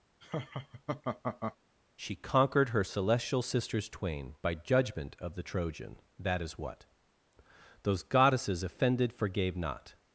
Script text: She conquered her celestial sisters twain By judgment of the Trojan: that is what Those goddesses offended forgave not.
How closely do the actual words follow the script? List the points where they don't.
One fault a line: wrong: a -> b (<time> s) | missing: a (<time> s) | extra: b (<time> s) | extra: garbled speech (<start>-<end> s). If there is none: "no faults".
no faults